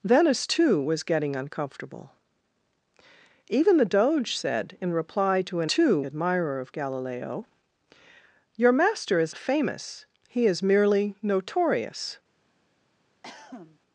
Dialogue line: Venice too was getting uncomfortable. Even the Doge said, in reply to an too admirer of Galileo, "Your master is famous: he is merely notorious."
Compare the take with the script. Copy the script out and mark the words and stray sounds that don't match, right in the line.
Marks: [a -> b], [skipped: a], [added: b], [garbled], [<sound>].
Venice too was getting uncomfortable. Even the Doge said, in reply to an too admirer of Galileo, "Your master is famous: he is merely notorious." [cough]